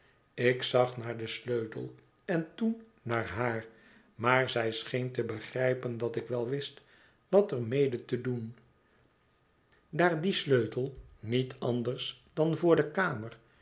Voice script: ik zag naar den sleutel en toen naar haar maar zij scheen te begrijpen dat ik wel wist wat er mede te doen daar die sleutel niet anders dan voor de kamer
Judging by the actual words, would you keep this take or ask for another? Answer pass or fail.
pass